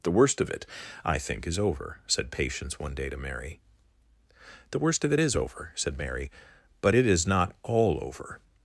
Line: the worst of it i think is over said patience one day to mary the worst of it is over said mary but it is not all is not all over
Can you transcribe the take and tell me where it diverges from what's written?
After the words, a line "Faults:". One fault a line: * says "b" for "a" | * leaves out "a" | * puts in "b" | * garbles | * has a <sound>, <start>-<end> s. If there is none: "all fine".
the worst of it i think is over said patience one day to mary the worst of it is over said mary but it is not all over
Faults:
* leaves out "is not all"